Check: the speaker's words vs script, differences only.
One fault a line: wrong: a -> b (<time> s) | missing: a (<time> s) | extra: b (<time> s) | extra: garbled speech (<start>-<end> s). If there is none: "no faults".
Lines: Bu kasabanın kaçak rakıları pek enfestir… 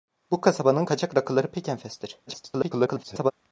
extra: garbled speech (2.3-3.3 s)